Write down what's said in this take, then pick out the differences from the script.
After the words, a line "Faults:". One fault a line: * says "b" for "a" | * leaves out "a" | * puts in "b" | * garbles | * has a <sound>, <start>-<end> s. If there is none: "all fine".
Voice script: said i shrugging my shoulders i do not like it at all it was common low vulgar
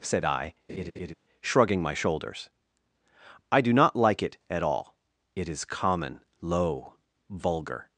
said i shrugging my shoulders i do not like it at all it is common low vulgar
Faults:
* has a laugh, 0.7-1.1 s
* says "is" for "was"